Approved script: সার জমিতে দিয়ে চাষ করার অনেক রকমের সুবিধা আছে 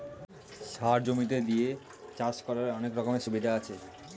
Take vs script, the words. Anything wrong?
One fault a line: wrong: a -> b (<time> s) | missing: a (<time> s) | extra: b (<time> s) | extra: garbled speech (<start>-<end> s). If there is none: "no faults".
no faults